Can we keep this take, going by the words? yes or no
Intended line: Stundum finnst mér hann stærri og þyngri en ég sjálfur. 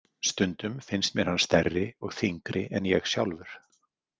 yes